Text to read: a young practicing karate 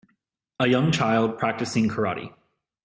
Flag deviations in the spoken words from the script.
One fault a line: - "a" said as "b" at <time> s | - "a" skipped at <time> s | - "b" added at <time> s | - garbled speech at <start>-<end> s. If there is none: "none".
- "child" added at 0.9 s